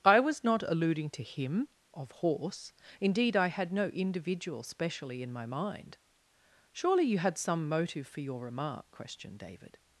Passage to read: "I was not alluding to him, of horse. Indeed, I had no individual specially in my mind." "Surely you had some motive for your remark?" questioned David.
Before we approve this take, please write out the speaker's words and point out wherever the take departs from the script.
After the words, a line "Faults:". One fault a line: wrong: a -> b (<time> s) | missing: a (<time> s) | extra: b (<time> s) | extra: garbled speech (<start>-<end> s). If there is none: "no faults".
"I was not alluding to him, of horse. Indeed, I had no individual specially in my mind." "Surely you had some motive for your remark?" questioned David.
Faults:
no faults